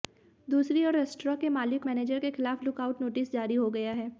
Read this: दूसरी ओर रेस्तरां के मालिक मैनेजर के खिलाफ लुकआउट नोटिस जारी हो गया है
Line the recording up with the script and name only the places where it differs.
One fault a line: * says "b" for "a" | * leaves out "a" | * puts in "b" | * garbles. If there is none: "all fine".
all fine